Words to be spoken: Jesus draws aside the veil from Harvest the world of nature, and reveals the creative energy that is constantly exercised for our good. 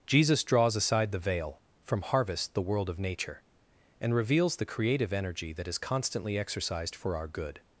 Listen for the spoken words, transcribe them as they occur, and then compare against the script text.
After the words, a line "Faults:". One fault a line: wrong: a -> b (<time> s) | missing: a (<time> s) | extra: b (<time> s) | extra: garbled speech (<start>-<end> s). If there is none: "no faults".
Jesus draws aside the veil from Harvest the world of nature, and reveals the creative energy that is constantly exercised for our good.
Faults:
no faults